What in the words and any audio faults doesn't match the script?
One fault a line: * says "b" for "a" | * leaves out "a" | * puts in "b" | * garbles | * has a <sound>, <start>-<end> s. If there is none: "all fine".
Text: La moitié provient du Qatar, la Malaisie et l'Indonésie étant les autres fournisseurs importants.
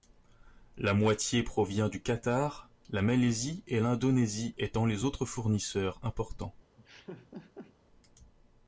* has a laugh, 6.8-7.7 s